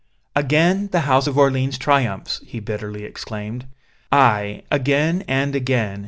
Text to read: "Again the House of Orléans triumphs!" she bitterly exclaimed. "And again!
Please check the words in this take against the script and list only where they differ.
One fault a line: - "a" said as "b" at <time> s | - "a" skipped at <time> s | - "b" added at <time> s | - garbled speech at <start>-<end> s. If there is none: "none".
- "she" said as "he" at 2.5 s
- "Aye again" added at 4.1 s